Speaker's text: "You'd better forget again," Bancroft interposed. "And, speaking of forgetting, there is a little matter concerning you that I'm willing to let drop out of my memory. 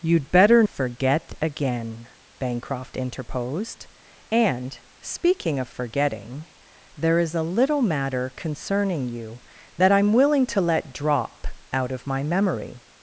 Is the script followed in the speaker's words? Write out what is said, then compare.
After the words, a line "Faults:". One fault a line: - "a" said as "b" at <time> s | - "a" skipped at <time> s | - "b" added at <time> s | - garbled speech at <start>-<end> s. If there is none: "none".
"You'd better forget again," Bancroft interposed. "And, speaking of forgetting, there is a little matter concerning you that I'm willing to let drop out of my memory.
Faults:
none